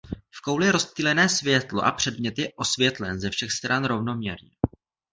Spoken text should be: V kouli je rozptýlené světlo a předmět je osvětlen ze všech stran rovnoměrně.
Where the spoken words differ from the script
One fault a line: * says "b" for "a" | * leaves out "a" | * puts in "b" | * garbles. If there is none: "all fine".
all fine